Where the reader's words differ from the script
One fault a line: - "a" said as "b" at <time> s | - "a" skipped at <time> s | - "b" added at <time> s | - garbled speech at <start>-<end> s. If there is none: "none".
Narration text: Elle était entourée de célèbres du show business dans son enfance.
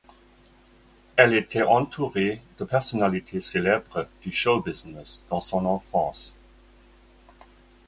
- "personnalités" added at 2.6 s